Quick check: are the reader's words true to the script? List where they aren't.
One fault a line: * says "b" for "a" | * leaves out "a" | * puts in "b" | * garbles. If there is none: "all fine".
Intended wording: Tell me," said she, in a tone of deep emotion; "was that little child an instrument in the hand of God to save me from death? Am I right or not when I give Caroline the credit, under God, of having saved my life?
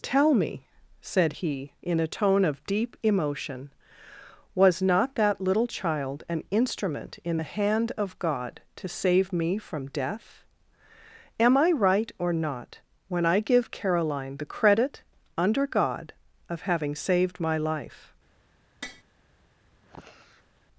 * says "he" for "she"
* puts in "not"